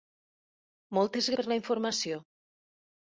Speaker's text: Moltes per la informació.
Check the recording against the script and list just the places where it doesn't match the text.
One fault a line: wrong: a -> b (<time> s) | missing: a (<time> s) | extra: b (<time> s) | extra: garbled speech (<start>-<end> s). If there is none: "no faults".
no faults